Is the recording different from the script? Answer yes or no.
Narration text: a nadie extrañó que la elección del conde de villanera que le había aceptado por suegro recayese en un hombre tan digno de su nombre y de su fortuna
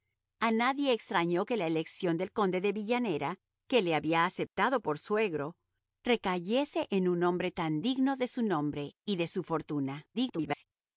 yes